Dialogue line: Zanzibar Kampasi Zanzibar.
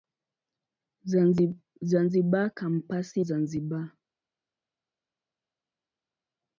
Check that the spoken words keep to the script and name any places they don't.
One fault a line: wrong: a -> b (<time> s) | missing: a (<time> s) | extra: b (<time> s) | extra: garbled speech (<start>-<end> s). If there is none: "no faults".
no faults